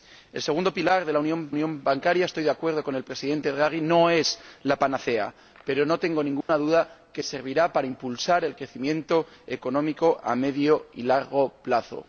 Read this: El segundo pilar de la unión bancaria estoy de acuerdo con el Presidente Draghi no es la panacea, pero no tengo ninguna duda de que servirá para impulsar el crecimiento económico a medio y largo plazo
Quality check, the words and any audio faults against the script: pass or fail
fail